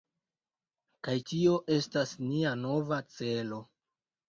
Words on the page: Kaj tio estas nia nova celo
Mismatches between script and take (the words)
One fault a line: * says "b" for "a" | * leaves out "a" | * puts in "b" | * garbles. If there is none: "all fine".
all fine